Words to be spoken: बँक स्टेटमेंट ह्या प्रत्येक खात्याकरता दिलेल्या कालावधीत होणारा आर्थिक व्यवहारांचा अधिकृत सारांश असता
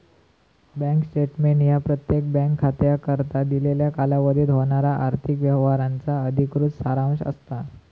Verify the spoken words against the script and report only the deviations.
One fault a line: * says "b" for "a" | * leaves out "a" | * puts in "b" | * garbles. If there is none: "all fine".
* puts in "बँक"